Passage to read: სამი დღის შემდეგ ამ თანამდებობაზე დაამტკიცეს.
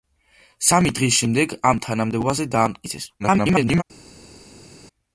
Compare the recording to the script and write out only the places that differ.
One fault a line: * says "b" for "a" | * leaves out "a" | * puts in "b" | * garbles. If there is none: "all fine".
* garbles